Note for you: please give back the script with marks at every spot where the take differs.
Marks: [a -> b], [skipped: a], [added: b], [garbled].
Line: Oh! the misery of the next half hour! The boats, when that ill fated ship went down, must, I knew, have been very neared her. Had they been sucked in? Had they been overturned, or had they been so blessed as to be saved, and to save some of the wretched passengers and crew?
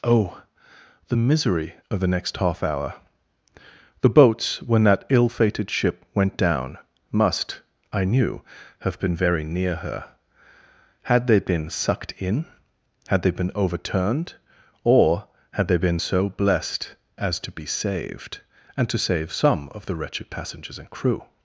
Oh! the misery of the next half hour! The boats, when that ill fated ship went down, must, I knew, have been very [neared -> near] her. Had they been sucked in? Had they been overturned, or had they been so blessed as to be saved, and to save some of the wretched passengers and crew?